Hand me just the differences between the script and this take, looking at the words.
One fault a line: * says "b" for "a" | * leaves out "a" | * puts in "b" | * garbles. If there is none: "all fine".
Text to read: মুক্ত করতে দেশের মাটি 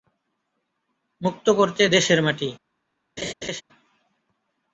all fine